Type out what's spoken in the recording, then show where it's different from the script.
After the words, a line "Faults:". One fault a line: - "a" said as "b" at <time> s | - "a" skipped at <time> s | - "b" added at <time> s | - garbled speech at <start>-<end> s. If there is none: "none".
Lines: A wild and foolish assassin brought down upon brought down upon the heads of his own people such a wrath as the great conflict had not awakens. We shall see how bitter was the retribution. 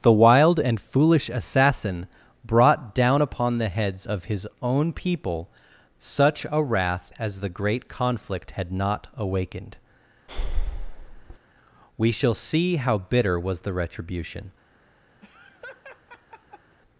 The wild and foolish assassin brought down upon the heads of his own people such a wrath as the great conflict had not awakened. We shall see how bitter was the retribution.
Faults:
- "A" said as "The" at 0.0 s
- "brought down upon" skipped at 3.6 s
- "awakens" said as "awakened" at 9.2 s